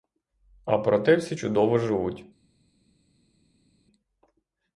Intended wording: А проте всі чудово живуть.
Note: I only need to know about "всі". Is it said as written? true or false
true